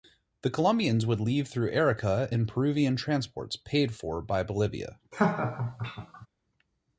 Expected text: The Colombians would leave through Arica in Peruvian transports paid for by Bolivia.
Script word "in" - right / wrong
right